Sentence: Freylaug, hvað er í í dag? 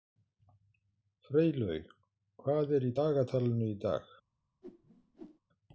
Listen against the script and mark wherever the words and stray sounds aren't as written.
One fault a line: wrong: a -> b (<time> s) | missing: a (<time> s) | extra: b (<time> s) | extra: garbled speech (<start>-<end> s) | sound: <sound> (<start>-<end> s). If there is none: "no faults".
extra: dagatalinu (3.0 s)
sound: whoosh (4.6-5.4 s)